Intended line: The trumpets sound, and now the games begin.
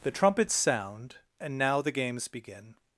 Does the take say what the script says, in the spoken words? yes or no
yes